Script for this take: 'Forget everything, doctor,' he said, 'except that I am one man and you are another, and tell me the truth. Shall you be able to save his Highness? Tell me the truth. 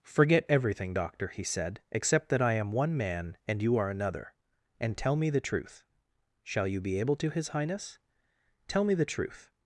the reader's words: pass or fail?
fail